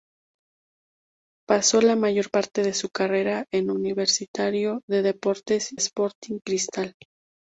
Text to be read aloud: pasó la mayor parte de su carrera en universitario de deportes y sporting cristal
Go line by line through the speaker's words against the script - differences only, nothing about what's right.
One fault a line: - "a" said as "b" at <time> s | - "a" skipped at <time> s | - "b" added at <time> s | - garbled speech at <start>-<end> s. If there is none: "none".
- "y" skipped at 5.7 s